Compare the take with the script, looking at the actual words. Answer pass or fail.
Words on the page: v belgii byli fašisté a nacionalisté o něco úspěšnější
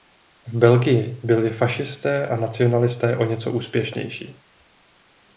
pass